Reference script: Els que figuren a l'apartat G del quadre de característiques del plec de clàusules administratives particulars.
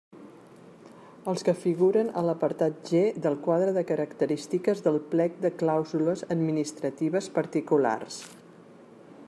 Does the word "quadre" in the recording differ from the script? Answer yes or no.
no